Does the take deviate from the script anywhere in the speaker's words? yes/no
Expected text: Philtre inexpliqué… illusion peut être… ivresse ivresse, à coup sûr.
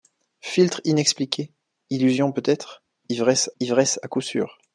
no